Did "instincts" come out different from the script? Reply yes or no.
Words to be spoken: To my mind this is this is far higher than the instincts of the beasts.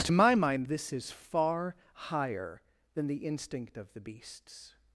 yes